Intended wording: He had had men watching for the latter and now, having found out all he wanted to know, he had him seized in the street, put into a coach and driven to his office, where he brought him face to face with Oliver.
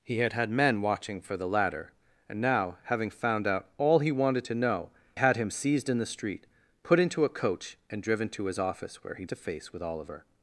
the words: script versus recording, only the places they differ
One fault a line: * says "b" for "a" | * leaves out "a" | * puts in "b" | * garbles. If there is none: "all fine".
* leaves out "he"
* leaves out "brought him face"